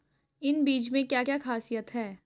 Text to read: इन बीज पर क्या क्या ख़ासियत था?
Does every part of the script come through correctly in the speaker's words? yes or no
no